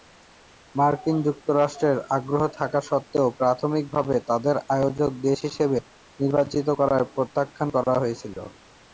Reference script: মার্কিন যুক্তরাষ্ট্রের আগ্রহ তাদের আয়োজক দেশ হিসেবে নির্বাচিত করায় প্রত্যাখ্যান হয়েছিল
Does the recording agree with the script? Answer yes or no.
no